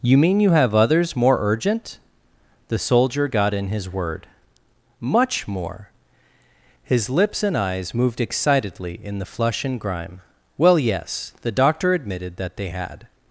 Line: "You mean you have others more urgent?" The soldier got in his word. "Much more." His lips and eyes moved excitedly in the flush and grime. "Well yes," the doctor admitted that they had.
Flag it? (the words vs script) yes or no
no